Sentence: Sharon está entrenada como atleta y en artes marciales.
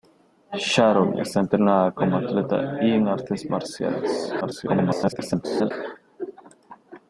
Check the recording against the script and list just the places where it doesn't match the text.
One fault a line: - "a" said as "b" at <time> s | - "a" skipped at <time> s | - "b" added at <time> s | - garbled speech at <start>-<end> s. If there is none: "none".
- garbled speech at 4.4-5.7 s